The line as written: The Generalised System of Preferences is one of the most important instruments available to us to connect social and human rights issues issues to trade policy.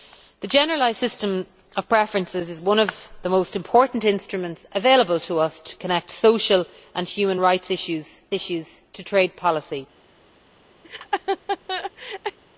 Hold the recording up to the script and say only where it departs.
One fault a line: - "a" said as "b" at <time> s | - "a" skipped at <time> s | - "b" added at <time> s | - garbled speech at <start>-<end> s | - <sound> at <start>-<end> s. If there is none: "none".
- laugh at 10.8-12.4 s